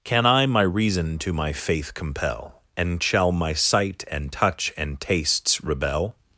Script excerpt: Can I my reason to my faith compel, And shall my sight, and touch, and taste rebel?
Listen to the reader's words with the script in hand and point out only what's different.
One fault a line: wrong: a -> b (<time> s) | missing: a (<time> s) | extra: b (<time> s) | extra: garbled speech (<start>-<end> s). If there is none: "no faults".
wrong: taste -> tastes (5.0 s)